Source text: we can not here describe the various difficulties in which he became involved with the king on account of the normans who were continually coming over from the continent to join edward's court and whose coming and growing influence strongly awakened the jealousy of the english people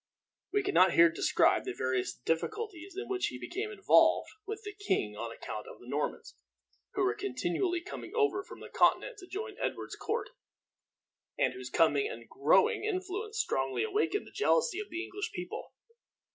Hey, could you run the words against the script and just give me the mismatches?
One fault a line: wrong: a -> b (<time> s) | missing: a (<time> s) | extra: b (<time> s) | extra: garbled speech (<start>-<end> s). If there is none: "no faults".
no faults